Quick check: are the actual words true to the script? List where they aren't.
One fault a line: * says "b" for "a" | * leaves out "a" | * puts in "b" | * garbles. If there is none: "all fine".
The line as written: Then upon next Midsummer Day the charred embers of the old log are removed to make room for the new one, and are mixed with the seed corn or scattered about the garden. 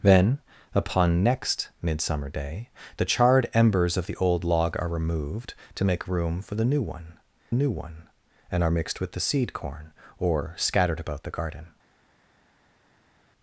* puts in "new one"